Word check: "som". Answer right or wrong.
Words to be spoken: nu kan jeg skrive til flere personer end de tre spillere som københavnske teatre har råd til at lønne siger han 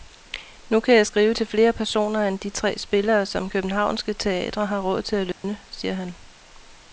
right